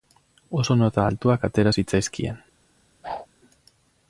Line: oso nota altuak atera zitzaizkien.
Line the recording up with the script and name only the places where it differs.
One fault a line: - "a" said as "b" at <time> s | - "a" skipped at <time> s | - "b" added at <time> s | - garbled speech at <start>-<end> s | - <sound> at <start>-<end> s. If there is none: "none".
- whoosh at 3.0-3.3 s